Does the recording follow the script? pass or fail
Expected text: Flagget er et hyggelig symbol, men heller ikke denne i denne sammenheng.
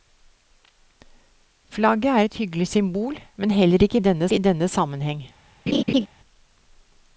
pass